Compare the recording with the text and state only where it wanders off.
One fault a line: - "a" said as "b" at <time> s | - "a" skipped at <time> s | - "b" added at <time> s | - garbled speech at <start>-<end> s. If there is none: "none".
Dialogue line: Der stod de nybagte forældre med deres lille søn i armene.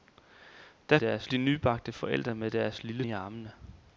- "stod" said as "deres" at 1.0 s
- "søn" skipped at 3.0 s